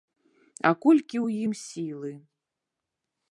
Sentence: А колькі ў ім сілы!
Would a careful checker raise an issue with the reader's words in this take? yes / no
no